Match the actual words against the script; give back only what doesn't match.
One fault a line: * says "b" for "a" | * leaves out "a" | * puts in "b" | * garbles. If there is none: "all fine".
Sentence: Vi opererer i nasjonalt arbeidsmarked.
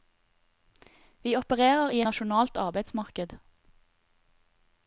all fine